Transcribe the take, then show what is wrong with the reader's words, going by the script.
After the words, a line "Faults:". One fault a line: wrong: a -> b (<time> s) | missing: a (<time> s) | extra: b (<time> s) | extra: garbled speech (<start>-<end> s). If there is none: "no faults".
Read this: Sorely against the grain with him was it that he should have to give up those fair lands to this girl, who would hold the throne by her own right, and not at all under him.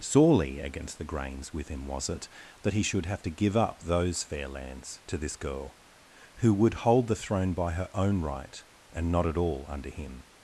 Sorely against the grains with him was it that he should have to give up those fair lands to this girl, who would hold the throne by her own right, and not at all under him.
Faults:
wrong: grain -> grains (1.1 s)